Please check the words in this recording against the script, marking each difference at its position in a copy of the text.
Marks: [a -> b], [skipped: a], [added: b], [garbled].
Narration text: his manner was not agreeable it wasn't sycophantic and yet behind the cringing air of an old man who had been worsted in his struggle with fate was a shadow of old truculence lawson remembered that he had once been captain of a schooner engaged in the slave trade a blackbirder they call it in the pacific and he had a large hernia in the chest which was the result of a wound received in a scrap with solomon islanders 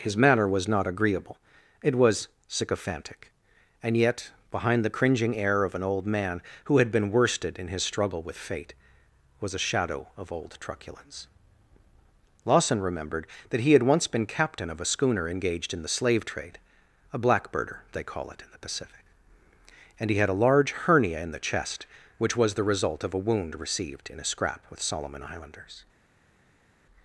his manner was not agreeable it [wasn't -> was] sycophantic and yet behind the cringing air of an old man who had been worsted in his struggle with fate was a shadow of old truculence lawson remembered that he had once been captain of a schooner engaged in the slave trade a blackbirder they call it in the pacific and he had a large hernia in the chest which was the result of a wound received in a scrap with solomon islanders